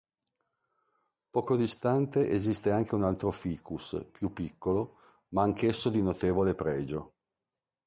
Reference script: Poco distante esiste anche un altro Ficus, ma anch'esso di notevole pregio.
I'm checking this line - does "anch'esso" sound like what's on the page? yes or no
yes